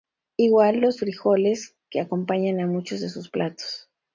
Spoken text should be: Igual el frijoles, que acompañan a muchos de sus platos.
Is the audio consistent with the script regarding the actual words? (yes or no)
no